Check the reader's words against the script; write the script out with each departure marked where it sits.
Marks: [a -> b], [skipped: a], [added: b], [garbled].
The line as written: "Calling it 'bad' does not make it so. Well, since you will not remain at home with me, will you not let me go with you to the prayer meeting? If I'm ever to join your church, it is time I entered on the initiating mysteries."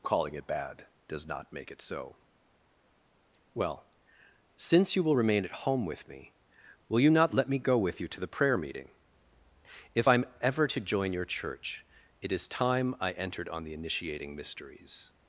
"Calling it 'bad' does not make it so. Well, since you will [skipped: not] remain at home with me, will you not let me go with you to the prayer meeting? If I'm ever to join your church, it is time I entered on the initiating mysteries."